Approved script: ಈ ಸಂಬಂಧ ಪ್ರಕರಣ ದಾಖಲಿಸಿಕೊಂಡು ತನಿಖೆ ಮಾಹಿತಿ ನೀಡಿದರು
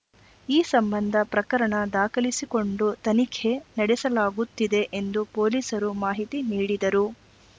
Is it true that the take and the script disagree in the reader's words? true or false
true